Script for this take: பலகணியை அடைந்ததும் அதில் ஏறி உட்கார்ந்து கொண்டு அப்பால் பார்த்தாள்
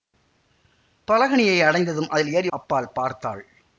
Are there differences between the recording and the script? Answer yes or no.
yes